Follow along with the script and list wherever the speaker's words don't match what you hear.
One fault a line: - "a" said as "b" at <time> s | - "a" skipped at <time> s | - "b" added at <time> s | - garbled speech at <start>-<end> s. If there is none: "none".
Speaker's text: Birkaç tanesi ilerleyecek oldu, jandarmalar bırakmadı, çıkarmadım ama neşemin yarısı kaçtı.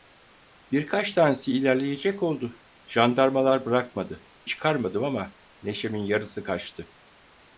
none